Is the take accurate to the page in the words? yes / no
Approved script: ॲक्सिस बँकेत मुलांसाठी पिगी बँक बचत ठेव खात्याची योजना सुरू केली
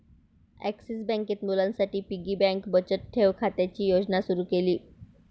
yes